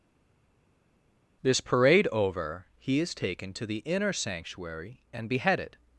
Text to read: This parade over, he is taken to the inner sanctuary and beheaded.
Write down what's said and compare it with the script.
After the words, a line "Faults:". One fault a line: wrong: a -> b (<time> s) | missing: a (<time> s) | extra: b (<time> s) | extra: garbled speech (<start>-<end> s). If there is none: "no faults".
This parade over, he is taken to the inner sanctuary and beheaded.
Faults:
no faults